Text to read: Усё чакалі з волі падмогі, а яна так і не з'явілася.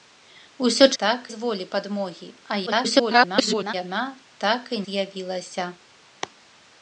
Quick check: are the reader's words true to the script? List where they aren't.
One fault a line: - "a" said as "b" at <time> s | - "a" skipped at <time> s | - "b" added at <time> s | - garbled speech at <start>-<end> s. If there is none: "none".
- "чакалі" said as "так" at 1.0 s
- garbled speech at 2.7-3.7 s
- "не" skipped at 4.8 s